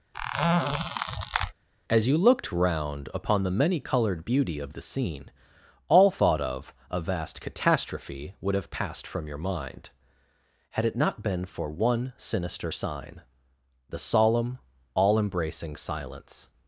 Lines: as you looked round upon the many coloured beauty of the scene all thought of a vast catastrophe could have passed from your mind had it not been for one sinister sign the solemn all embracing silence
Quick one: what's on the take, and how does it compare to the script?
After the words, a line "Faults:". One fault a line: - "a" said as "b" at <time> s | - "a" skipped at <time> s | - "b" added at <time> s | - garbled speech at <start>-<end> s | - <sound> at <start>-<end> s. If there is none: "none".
as you looked round upon the many coloured beauty of the scene all thought of a vast catastrophe would have passed from your mind had it not been for one sinister sign the solemn all embracing silence
Faults:
- squeak at 0.1-1.5 s
- "could" said as "would" at 8.4 s